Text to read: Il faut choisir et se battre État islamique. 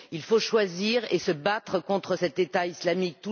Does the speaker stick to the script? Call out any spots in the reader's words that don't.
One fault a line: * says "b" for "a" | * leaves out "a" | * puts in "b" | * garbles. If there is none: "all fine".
* puts in "contre cet"